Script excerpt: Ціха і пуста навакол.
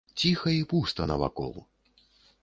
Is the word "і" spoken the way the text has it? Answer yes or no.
yes